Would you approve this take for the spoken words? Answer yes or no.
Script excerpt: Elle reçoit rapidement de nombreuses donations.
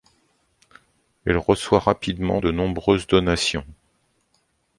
yes